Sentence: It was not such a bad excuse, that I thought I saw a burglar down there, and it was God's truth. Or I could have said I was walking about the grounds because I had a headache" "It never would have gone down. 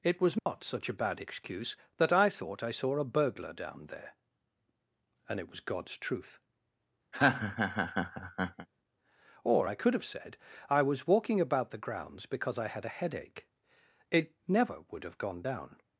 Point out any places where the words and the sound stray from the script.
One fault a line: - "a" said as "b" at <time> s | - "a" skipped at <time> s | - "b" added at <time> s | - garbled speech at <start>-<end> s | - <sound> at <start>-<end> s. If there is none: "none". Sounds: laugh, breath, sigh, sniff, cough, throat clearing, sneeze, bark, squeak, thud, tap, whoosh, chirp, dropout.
- dropout at 0.4-0.5 s
- laugh at 7.1-8.7 s